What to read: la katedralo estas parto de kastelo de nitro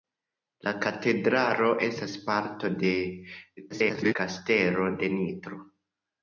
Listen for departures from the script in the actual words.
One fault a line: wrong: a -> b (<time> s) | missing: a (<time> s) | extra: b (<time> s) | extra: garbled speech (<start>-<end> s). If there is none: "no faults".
extra: garbled speech (3.7-4.1 s)